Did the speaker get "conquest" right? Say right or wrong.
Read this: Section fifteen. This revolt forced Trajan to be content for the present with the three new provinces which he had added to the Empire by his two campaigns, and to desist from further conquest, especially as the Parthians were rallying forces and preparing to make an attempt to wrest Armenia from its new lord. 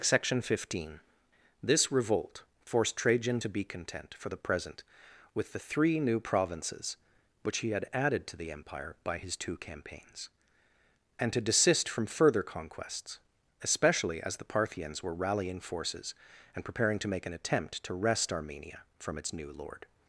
wrong